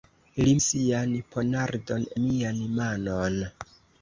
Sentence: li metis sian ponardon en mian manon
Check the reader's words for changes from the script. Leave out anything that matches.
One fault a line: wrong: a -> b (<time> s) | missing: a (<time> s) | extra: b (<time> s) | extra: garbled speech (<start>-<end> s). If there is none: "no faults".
missing: metis (0.5 s)
missing: en (2.1 s)